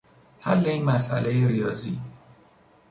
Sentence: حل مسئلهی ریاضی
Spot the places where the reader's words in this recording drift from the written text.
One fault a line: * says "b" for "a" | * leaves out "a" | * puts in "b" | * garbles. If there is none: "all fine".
* puts in "این"